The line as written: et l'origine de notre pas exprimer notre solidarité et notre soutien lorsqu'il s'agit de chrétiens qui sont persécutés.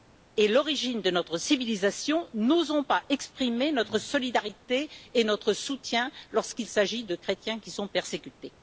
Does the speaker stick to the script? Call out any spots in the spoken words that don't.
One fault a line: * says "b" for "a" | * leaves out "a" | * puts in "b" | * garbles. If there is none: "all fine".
* puts in "civilisation n'osons"